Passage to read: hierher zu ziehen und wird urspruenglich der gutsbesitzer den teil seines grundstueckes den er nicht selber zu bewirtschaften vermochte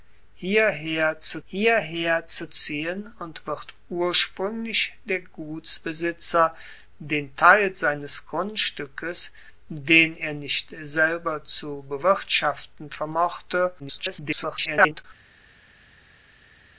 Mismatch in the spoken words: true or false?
true